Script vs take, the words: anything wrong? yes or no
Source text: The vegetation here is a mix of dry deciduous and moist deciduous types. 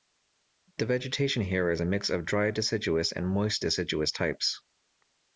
no